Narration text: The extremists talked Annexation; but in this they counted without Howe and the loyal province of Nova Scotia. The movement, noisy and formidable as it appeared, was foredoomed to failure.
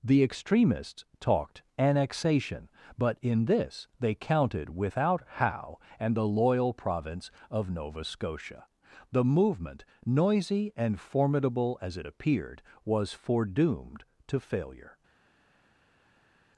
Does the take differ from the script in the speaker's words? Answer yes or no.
no